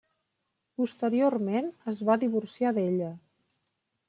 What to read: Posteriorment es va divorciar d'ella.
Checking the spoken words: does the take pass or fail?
pass